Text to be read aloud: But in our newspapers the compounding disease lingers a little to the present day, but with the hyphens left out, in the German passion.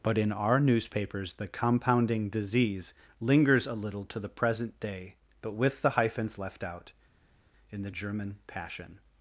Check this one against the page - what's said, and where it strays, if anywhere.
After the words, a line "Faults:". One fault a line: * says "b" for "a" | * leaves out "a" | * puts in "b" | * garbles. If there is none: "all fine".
But in our newspapers the compounding disease lingers a little to the present day, but with the hyphens left out, in the German passion.
Faults:
all fine